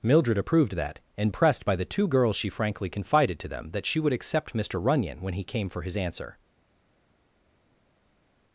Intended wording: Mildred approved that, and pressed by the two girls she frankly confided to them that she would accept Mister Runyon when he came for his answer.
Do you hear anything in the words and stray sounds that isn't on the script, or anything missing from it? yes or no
no